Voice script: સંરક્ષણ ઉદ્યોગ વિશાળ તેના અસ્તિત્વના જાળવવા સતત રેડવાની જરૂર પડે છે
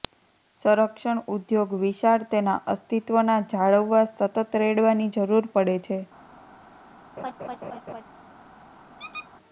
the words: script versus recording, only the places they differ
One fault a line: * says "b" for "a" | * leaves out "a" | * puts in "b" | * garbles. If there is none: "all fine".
all fine